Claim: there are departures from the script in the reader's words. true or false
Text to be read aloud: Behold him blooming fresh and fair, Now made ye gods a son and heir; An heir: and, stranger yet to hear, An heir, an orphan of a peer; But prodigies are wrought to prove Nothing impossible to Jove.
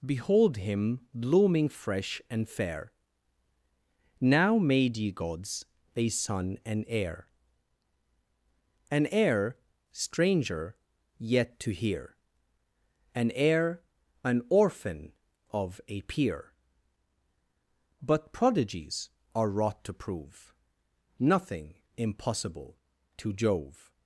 true